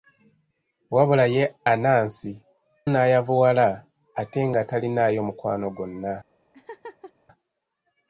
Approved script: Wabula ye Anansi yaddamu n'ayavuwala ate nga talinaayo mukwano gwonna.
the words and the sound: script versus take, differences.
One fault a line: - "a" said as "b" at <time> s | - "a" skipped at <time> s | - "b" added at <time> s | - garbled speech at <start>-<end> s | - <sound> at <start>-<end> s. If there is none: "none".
- "yaddamu" skipped at 2.3 s
- laugh at 6.5-7.1 s